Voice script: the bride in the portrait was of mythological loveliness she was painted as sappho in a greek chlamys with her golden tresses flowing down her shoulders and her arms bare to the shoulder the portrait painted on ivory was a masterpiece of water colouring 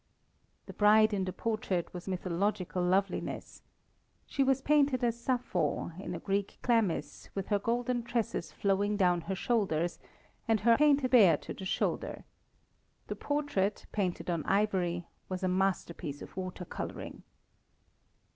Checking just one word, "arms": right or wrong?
wrong